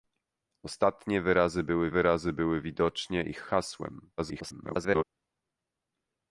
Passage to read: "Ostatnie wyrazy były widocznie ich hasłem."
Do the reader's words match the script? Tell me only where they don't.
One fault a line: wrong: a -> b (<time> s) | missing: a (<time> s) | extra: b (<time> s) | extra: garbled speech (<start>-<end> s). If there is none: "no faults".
extra: wyrazy były (1.9 s)
extra: garbled speech (4.2-5.0 s)